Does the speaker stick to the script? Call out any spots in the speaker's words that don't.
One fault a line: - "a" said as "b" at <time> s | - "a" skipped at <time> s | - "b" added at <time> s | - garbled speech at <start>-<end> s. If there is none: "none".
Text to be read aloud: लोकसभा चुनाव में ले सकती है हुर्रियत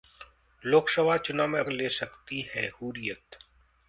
none